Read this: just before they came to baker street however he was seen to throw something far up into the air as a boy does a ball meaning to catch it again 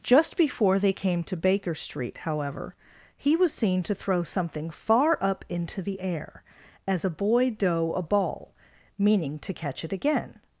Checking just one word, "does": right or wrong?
wrong